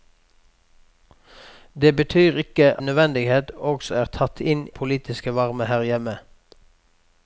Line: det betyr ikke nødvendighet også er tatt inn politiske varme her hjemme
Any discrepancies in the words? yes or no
no